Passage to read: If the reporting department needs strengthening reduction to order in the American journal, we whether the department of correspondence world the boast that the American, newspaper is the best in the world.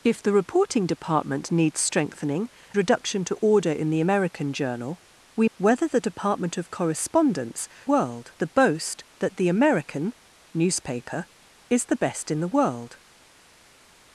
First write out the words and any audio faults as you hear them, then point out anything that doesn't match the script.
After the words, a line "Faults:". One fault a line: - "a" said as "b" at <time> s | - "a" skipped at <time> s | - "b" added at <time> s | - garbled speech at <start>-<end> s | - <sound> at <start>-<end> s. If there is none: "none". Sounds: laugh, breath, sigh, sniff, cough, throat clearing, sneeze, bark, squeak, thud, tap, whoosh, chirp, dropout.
If the reporting department needs strengthening reduction to order in the American journal, we whether the department of correspondence world the boast that the American, newspaper is the best in the world.
Faults:
none